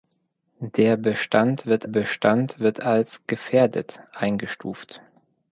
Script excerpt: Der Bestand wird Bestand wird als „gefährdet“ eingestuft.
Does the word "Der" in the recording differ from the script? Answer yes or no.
no